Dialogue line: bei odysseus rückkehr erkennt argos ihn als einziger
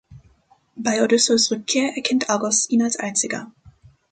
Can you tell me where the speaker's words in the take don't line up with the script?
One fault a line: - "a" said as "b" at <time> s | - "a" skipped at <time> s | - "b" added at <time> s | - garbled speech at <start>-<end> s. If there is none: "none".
none